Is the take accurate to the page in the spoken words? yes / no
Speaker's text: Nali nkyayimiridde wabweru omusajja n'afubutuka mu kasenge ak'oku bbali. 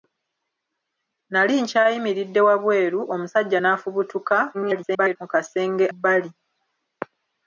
no